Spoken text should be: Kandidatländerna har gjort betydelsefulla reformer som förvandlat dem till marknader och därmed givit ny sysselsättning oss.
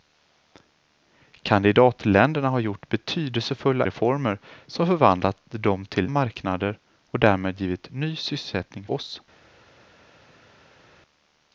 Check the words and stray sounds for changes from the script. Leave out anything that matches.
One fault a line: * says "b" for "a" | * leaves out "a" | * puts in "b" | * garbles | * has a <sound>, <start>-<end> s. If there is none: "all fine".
all fine